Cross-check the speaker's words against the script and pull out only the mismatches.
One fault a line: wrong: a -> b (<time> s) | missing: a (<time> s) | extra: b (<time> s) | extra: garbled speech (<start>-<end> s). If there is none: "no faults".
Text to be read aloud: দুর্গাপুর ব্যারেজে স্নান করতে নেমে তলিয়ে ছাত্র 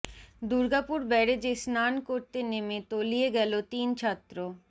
extra: গেল তিন (3.4 s)